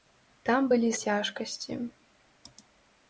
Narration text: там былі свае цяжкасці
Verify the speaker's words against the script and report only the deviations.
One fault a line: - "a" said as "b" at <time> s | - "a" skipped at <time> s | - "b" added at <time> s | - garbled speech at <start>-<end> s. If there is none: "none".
- "свае" skipped at 0.9 s